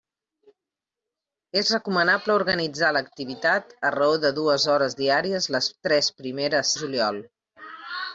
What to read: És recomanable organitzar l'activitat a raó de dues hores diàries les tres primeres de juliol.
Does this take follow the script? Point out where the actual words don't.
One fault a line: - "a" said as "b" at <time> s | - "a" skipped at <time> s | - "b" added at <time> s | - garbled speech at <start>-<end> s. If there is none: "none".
none